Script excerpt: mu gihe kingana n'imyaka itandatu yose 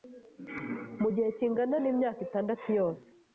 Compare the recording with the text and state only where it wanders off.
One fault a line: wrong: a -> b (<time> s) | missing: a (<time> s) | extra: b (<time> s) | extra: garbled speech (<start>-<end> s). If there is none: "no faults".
no faults